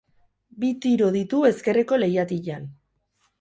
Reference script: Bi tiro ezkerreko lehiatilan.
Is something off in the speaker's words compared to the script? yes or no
yes